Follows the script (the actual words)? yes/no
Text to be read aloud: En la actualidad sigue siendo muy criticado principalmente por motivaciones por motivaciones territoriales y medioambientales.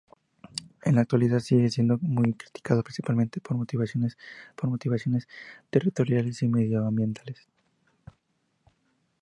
yes